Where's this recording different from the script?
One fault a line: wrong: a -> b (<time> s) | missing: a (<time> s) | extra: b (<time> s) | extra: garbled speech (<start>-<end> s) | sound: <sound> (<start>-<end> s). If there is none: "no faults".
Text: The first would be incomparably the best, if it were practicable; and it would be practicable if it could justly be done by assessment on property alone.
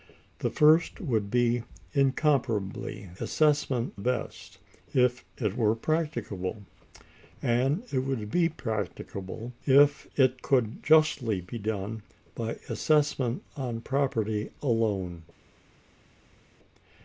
wrong: the -> assessment (3.2 s)